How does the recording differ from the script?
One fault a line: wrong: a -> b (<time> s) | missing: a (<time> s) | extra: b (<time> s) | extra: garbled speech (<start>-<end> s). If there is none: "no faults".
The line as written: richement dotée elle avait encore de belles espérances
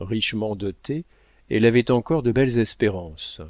no faults